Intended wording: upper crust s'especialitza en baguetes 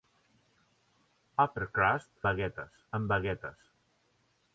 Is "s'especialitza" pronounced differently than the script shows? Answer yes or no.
yes